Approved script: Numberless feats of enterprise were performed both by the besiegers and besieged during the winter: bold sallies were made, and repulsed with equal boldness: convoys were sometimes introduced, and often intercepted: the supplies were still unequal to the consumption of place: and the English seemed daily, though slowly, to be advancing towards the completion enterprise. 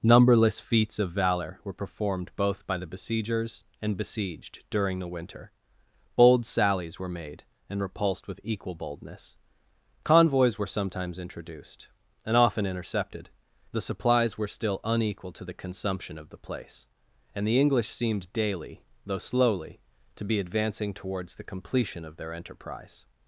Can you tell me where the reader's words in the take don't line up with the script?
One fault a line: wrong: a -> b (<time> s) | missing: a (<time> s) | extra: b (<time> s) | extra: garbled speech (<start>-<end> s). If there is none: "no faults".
wrong: enterprise -> valor (1.1 s)
extra: the (16.3 s)
extra: of their (22.0 s)